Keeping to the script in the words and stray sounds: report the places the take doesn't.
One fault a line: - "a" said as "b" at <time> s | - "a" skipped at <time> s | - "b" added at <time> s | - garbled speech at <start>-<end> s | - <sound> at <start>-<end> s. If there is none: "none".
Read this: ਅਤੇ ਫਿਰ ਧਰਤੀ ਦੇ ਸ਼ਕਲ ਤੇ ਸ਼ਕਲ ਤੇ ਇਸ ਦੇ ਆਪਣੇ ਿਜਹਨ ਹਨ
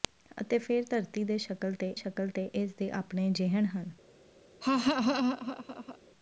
- laugh at 4.6-6.0 s